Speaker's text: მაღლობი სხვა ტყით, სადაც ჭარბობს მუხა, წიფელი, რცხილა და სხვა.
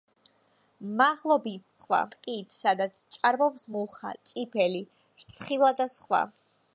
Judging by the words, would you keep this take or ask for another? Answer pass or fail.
pass